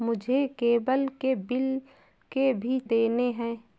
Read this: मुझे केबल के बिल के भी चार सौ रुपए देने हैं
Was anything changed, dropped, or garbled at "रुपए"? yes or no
yes